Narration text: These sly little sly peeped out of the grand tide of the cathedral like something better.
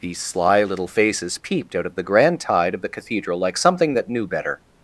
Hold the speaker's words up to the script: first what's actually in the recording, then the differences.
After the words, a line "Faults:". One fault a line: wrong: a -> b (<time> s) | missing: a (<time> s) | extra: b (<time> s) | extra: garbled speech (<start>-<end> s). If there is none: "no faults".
These sly little faces peeped out of the grand tide of the cathedral like something that knew better.
Faults:
wrong: sly -> faces (0.9 s)
extra: that knew (3.9 s)